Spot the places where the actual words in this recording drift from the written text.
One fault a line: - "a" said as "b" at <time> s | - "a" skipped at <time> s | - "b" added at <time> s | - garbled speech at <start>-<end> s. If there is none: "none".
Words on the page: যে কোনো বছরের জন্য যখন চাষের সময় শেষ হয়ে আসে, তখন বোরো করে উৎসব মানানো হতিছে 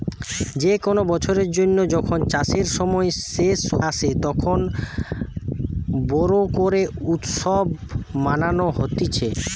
- "হয়ে" skipped at 3.6 s